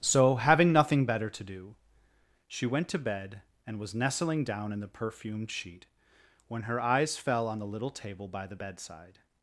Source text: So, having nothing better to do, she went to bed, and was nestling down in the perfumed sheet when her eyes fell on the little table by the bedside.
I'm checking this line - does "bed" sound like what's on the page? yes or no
yes